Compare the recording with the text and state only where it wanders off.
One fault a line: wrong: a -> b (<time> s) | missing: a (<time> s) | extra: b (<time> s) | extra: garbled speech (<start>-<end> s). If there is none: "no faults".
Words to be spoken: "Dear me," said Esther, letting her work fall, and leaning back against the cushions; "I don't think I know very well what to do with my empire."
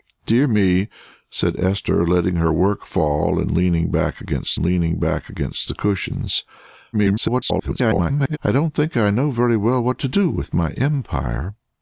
extra: leaning back against (4.6 s)
extra: garbled speech (6.9-8.4 s)